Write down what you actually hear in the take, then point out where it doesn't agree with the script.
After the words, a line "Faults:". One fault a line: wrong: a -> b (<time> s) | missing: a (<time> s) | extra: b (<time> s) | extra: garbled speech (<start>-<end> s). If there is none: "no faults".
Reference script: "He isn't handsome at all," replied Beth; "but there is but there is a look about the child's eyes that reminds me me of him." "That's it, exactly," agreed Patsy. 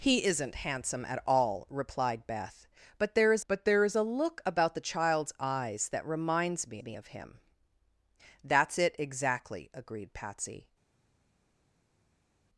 "He isn't handsome at all," replied Beth; "but there is but there is a look about the child's eyes that reminds me me of him." "That's it, exactly," agreed Patsy.
Faults:
no faults